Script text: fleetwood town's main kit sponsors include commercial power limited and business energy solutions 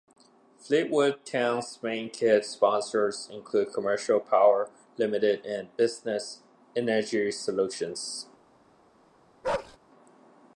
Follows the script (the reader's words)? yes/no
yes